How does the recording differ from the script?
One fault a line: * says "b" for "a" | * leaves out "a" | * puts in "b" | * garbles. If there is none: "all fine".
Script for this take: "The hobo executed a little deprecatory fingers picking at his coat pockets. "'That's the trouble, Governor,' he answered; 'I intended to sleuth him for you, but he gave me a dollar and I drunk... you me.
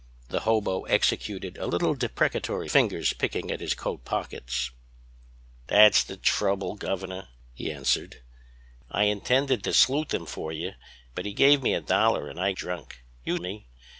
all fine